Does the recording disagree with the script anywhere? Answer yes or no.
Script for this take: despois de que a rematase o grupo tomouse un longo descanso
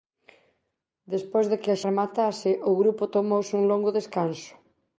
no